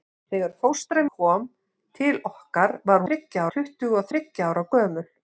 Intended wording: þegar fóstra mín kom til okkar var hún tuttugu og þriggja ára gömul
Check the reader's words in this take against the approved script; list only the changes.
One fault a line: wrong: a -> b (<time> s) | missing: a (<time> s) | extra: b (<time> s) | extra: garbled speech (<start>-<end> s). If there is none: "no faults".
missing: mín (1.0 s)
wrong: hún -> þriggja (3.1 s)